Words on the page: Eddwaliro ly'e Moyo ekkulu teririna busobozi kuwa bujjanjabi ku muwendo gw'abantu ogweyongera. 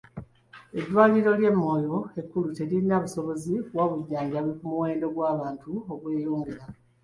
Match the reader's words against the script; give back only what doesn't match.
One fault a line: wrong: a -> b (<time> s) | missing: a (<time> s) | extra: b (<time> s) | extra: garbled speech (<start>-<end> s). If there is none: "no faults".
no faults